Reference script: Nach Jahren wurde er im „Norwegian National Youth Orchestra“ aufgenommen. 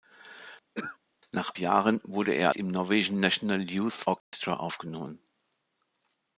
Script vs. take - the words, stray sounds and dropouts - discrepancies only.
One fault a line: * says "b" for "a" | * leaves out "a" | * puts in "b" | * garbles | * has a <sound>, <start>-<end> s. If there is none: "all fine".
* has a throat clearing, 0.7-1.0 s
* has a dropout, 4.2-4.3 s